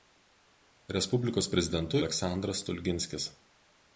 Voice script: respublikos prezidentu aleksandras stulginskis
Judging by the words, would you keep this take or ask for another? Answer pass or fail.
pass